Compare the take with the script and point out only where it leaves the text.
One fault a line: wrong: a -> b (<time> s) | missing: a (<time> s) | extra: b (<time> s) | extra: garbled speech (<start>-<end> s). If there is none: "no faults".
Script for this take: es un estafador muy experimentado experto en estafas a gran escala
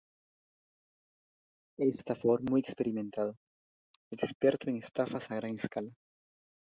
missing: un (2.0 s)